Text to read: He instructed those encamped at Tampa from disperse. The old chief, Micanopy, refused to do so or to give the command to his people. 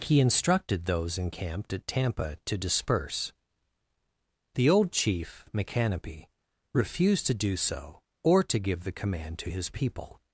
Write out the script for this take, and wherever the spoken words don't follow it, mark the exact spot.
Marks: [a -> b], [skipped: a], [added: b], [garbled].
He instructed those encamped at Tampa [from -> to] disperse. The old chief, Micanopy, refused to do so or to give the command to his people.